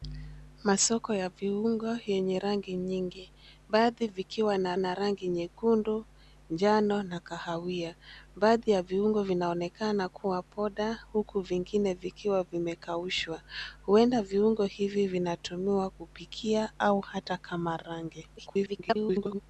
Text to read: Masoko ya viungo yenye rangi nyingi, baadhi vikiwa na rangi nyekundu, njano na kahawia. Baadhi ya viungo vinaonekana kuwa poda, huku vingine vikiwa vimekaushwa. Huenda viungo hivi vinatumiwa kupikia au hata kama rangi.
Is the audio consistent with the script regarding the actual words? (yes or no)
no